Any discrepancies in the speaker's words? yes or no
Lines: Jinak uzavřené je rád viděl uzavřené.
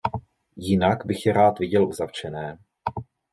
yes